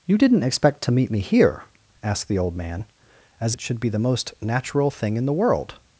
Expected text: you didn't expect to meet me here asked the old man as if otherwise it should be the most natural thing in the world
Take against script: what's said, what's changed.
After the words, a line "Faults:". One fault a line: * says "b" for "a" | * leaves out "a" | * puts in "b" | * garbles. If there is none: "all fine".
you didn't expect to meet me here asked the old man as it should be the most natural thing in the world
Faults:
* leaves out "if otherwise"